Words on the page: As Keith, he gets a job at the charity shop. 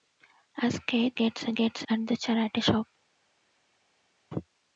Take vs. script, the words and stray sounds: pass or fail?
fail